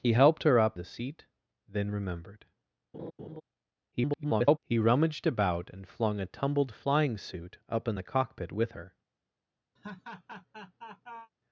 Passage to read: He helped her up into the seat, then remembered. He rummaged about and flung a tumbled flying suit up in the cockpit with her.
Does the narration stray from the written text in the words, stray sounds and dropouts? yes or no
yes